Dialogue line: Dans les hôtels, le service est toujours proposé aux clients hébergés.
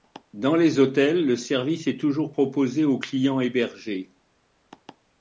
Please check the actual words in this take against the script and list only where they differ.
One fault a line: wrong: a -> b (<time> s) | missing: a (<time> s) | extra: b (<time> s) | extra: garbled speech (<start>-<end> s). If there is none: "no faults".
no faults